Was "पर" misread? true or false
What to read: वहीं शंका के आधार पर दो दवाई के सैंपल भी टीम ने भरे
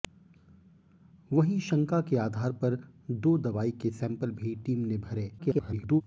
false